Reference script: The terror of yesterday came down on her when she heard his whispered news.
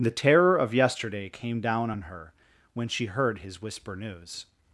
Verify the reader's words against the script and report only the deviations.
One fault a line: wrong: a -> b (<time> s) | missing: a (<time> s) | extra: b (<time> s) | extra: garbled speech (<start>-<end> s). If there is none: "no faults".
wrong: whispered -> whisper (3.6 s)